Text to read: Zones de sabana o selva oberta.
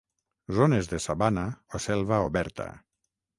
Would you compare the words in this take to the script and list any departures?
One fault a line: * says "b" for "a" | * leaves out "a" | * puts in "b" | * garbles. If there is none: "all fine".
all fine